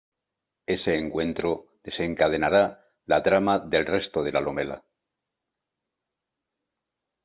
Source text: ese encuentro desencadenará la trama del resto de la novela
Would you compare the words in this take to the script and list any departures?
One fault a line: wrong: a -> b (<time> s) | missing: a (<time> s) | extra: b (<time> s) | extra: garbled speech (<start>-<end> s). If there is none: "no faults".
no faults